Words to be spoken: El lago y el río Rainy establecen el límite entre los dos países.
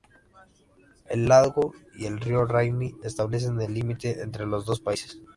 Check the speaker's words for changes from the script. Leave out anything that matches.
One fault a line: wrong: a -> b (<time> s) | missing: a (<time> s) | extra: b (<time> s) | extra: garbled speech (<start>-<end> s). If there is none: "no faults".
no faults